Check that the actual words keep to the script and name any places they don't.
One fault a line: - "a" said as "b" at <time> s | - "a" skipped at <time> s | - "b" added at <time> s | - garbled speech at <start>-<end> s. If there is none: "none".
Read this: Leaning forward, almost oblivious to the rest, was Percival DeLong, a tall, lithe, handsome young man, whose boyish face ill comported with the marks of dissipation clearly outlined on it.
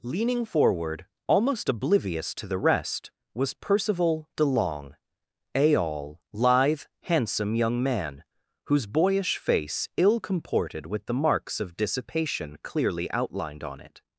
- "tall" said as "all" at 5.7 s